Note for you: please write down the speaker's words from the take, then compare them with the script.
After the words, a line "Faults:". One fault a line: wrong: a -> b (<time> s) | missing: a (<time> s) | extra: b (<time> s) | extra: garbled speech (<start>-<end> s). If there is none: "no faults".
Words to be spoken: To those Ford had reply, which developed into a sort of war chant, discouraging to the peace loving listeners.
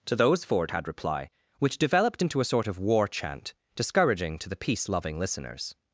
To those Ford had reply, which developed into a sort of war chant, discouraging to the peace loving listeners.
Faults:
no faults